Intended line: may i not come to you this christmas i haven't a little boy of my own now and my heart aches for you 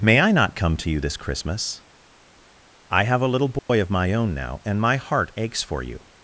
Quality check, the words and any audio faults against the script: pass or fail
fail